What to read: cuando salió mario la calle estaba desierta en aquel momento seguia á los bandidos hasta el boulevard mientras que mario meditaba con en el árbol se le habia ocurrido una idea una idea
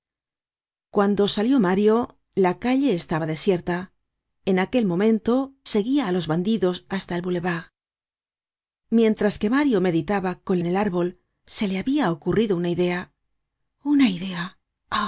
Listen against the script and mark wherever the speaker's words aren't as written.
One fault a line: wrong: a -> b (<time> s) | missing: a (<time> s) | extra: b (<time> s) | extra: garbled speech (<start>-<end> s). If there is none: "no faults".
no faults